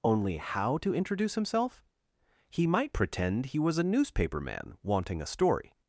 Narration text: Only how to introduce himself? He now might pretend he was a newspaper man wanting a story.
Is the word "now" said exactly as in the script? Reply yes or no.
no